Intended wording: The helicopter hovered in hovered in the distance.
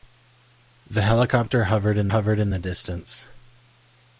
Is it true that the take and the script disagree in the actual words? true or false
false